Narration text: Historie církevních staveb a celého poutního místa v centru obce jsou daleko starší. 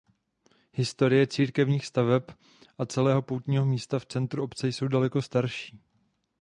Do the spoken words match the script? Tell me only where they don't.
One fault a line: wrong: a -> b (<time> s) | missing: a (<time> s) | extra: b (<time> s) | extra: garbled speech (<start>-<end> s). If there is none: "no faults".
no faults